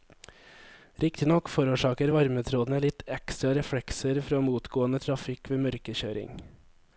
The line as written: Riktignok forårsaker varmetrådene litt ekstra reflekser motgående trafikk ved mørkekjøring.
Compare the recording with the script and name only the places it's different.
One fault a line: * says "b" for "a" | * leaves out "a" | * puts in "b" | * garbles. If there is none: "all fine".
* puts in "fra"